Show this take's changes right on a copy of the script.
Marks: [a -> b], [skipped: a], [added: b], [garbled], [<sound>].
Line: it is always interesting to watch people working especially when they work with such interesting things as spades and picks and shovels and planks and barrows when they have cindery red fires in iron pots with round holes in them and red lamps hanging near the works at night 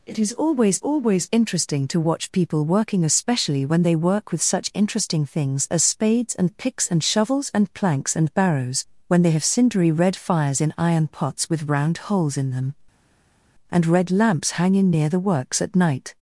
it is always [added: always] interesting to watch people working especially when they work with such interesting things as spades and picks and shovels and planks and barrows when they have cindery red fires in iron pots with round holes in them and red lamps hanging near the works at night